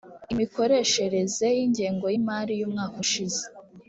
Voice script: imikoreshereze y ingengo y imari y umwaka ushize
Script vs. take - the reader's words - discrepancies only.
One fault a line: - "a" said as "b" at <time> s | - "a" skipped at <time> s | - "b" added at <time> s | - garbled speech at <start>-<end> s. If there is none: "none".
none